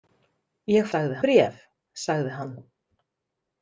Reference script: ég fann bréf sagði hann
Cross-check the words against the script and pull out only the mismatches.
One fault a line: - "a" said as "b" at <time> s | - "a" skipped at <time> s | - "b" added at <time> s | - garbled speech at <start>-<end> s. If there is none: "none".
- "fann" said as "sagði" at 0.9 s